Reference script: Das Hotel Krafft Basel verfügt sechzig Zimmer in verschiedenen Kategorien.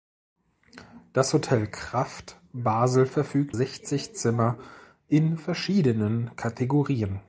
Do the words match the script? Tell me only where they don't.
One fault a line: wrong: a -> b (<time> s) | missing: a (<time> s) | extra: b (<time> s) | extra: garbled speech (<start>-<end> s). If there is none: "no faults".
no faults